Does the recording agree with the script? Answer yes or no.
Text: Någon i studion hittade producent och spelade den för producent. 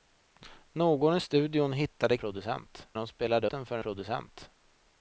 yes